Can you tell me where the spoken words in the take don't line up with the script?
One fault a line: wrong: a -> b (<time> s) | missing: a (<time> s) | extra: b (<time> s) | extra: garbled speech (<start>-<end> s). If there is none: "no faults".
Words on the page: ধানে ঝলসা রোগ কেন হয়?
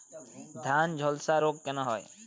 no faults